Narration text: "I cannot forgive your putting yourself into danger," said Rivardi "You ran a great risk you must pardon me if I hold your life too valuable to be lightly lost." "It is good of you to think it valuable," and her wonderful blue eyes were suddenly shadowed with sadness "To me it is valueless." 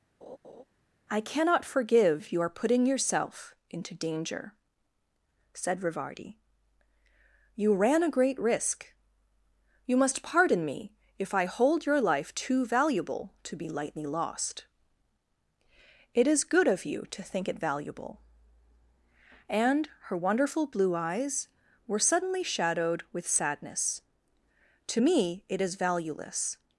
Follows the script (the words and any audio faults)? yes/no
no